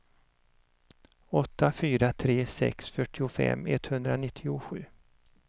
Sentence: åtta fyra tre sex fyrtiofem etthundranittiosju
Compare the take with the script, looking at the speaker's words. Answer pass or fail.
pass